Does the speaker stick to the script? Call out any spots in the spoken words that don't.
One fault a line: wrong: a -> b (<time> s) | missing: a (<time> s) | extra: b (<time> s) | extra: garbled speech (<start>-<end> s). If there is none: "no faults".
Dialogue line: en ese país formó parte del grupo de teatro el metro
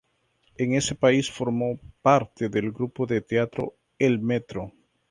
no faults